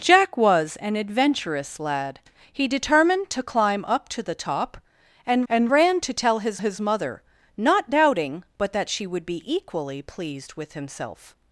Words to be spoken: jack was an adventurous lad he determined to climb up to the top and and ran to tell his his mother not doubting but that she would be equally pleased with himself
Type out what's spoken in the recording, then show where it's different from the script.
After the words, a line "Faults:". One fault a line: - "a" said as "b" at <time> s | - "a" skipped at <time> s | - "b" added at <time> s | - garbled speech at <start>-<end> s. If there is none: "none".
jack was an adventurous lad he determined to climb up to the top and and ran to tell his his mother not doubting but that she would be equally pleased with himself
Faults:
none